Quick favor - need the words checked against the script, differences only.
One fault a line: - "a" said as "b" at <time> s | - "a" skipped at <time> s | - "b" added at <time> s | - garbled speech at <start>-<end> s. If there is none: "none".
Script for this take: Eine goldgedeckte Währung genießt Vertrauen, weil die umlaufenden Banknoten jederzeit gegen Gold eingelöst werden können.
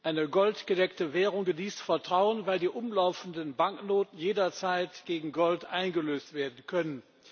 none